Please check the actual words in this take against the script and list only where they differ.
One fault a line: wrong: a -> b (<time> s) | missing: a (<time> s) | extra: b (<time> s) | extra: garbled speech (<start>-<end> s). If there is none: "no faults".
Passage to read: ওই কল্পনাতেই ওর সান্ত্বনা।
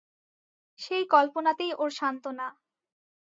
wrong: ওই -> সেই (0.8 s)